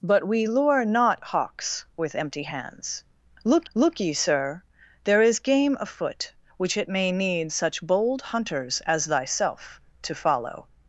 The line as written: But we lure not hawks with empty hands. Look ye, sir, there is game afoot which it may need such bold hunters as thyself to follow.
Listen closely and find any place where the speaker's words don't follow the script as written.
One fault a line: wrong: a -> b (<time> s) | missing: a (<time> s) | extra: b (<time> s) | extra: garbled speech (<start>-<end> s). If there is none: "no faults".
extra: look (3.7 s)